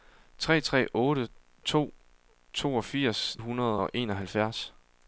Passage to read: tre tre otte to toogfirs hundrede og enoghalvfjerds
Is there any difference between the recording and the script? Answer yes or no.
no